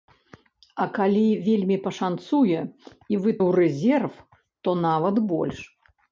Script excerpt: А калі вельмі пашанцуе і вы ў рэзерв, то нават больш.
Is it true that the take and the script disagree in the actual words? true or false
false